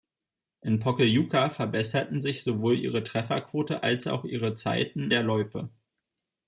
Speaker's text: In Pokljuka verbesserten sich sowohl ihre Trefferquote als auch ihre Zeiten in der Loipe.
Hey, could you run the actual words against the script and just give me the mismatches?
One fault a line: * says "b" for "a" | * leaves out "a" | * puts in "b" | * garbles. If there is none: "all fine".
* leaves out "in"